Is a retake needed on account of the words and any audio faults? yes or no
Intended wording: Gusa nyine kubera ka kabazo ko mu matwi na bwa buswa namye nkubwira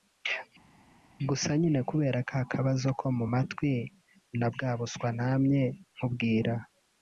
no